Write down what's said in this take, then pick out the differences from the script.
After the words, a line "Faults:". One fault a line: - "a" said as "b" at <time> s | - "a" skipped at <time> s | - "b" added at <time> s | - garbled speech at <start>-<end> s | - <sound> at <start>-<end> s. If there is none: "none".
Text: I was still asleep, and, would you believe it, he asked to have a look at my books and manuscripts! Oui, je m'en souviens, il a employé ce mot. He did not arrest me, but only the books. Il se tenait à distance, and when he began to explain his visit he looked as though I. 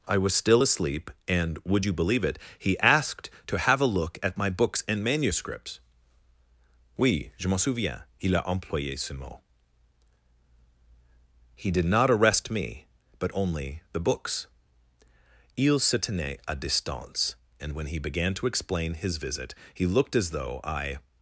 I was still asleep, and, would you believe it, he asked to have a look at my books and manuscripts! Oui, je m'en souviens, il a employé ce mot. He did not arrest me, but only the books. Il se tenait à distance, and when he began to explain his visit he looked as though I.
Faults:
none